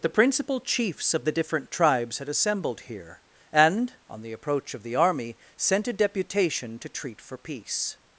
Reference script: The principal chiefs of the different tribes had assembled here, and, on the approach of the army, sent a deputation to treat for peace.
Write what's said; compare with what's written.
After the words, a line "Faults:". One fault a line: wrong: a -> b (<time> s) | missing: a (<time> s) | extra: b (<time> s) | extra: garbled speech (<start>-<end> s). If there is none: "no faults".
The principal chiefs of the different tribes had assembled here, and, on the approach of the army, sent a deputation to treat for peace.
Faults:
no faults